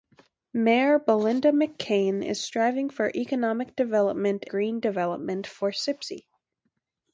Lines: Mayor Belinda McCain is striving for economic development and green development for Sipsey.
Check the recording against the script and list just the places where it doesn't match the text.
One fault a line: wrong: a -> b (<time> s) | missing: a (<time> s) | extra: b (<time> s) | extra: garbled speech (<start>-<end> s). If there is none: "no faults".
missing: and (4.5 s)